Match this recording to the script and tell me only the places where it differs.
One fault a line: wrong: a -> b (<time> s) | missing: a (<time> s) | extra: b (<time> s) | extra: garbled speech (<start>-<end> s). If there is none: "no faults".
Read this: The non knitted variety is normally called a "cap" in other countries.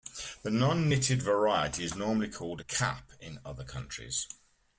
no faults